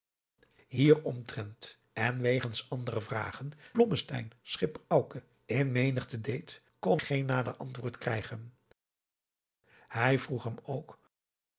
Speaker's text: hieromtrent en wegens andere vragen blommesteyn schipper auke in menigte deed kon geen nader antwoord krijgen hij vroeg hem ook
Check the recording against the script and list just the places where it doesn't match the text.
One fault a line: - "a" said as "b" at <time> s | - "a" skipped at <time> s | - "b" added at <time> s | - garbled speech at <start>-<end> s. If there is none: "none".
none